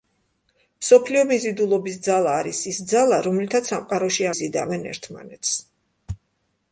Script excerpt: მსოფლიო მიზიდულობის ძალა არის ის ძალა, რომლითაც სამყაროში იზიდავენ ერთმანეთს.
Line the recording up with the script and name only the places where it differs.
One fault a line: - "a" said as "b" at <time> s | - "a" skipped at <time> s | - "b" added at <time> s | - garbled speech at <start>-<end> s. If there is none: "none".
none